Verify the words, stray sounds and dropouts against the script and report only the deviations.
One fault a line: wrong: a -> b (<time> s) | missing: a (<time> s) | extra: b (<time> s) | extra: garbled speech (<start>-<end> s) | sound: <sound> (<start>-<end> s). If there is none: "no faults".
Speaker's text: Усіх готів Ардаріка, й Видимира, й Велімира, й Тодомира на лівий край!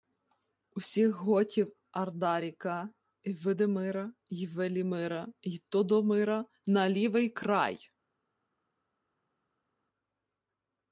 no faults